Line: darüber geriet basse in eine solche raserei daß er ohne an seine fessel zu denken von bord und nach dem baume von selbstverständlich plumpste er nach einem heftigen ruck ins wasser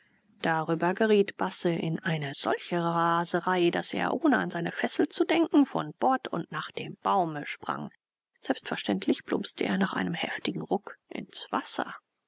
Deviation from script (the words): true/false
true